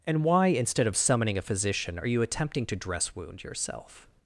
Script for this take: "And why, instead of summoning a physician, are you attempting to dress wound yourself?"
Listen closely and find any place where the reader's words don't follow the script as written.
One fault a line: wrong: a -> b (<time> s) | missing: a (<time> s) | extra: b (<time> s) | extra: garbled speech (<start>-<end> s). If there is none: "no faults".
no faults